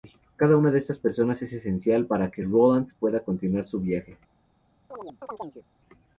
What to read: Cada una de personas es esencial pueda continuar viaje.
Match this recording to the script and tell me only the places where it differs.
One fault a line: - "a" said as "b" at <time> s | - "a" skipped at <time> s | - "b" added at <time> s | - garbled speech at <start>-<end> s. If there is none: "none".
- "estas" added at 0.8 s
- "para que Roland" added at 2.0 s
- "su" added at 3.7 s